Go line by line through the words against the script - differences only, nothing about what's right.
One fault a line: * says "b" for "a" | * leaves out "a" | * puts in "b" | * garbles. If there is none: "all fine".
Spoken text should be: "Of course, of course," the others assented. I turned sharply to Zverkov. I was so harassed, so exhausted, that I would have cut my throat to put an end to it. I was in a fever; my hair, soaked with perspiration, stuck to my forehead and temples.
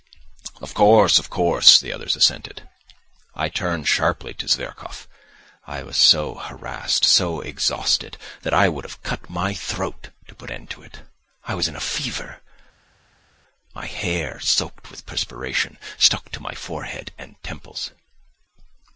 * leaves out "an"